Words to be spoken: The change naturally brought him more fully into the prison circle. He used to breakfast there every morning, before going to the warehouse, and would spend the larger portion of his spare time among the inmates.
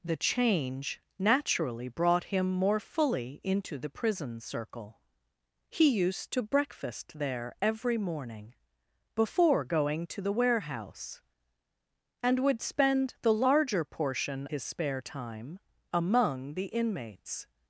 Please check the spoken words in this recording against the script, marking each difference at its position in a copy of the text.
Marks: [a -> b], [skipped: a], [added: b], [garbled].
The change naturally brought him more fully into the prison circle. He used to breakfast there every morning, before going to the warehouse, and would spend the larger portion [skipped: of] his spare time among the inmates.